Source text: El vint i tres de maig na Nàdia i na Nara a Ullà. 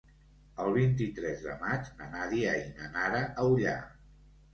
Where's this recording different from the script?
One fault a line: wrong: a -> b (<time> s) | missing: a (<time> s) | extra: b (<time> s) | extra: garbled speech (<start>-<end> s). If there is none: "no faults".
no faults